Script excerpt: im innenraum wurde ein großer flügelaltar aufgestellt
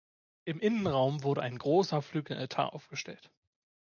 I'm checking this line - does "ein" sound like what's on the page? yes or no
yes